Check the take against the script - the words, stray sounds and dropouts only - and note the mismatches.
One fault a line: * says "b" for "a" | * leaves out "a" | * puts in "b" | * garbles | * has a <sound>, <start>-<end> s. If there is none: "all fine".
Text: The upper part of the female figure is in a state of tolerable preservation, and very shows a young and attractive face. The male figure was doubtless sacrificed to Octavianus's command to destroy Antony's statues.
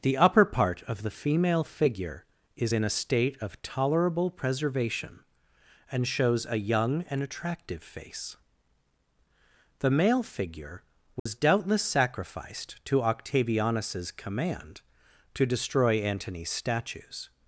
* leaves out "very"
* has a dropout, 11.2-11.3 s